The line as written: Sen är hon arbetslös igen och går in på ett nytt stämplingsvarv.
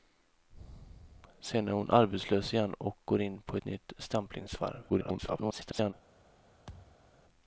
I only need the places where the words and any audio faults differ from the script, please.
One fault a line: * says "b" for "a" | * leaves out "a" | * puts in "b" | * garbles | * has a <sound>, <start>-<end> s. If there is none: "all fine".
* garbles
* has a thud, 6.7-7.1 s